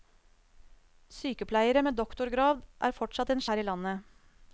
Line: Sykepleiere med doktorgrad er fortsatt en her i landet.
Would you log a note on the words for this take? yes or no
no